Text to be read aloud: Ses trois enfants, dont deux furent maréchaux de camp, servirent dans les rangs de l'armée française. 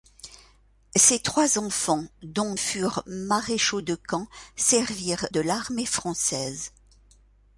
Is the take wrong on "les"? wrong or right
wrong